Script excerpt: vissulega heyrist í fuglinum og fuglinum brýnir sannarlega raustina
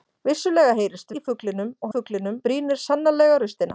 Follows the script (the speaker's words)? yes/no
yes